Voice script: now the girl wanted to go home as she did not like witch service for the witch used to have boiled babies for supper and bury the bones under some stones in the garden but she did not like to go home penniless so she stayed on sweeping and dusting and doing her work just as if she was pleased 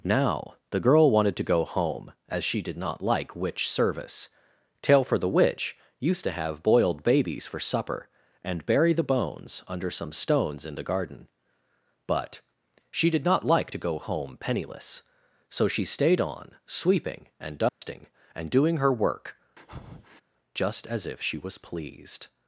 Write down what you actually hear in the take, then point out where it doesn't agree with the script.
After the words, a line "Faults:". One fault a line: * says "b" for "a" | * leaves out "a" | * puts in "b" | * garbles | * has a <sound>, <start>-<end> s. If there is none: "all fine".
now the girl wanted to go home as she did not like witch service tail for the witch used to have boiled babies for supper and bury the bones under some stones in the garden but she did not like to go home penniless so she stayed on sweeping and dusting and doing her work just as if she was pleased
Faults:
* puts in "tail"
* has a dropout, 17.7-17.8 s
* has a breath, 19.6-20.2 s